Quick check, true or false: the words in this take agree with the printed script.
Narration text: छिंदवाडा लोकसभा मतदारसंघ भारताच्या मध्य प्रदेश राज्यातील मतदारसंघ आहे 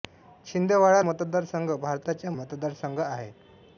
false